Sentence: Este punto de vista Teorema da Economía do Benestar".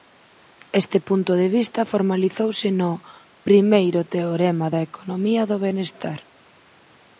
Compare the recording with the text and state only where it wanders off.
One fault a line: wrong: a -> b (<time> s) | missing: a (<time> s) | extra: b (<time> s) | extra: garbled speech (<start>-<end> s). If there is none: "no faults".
extra: formalizouse no Primeiro (1.9 s)